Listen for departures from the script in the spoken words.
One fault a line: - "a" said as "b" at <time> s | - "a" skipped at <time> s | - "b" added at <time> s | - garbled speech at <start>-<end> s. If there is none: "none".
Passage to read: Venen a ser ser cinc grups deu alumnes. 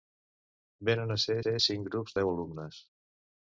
none